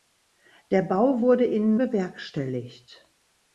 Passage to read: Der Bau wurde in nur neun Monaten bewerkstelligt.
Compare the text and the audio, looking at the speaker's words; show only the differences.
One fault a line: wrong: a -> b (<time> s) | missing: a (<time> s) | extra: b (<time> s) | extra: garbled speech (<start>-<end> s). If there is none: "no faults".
missing: nur neun Monaten (1.7 s)